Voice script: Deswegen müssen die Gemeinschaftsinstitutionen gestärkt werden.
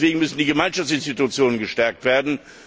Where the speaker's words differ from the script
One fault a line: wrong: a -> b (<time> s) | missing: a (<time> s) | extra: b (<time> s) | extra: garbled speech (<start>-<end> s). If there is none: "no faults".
no faults